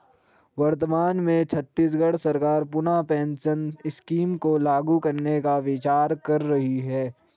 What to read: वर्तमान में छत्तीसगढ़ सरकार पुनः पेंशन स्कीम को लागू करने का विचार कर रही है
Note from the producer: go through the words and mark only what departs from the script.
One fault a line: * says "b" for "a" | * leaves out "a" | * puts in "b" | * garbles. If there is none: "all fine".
all fine